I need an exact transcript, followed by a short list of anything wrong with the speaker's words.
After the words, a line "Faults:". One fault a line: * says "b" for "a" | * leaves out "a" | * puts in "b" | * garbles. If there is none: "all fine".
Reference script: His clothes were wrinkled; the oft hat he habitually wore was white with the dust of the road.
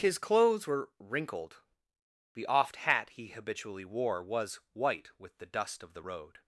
His clothes were wrinkled; the oft hat he habitually wore was white with the dust of the road.
Faults:
all fine